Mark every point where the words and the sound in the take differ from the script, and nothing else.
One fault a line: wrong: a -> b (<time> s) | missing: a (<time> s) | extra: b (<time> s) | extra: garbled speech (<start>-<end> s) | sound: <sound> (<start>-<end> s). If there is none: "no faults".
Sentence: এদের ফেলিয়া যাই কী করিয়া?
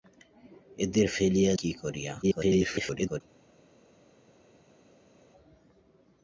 missing: যাই (1.5 s)
extra: garbled speech (2.2-3.2 s)